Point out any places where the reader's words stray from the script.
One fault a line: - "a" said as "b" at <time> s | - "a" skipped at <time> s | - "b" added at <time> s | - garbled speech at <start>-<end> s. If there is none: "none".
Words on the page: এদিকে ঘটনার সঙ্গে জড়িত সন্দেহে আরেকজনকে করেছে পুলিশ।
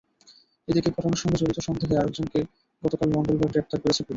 - "গতকাল মঙ্গলবার গ্রেপ্তার" added at 2.8 s